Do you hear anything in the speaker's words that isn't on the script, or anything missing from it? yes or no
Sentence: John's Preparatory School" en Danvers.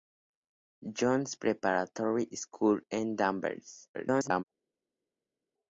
yes